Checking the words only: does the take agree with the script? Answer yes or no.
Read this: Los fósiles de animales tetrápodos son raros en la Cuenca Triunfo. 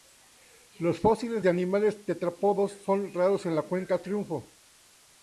yes